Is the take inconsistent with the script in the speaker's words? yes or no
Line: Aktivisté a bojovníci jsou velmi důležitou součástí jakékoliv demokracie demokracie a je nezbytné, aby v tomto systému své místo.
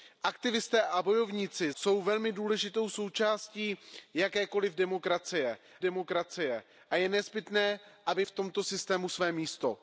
no